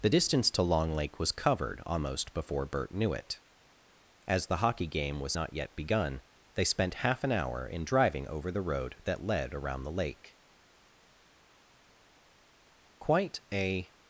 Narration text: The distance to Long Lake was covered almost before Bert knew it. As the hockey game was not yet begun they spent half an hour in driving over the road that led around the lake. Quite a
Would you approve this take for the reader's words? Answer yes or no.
yes